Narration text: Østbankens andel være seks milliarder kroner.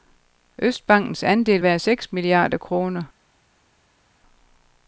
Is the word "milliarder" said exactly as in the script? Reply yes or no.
yes